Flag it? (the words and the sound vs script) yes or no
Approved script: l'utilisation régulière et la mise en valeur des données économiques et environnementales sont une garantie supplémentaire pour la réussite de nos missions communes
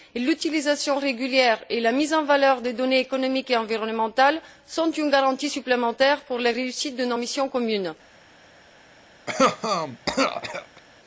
yes